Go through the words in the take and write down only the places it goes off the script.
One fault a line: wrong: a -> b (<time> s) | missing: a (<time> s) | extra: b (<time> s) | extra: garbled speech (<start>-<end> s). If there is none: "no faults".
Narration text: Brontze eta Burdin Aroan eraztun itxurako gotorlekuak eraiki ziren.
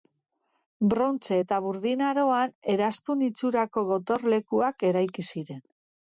no faults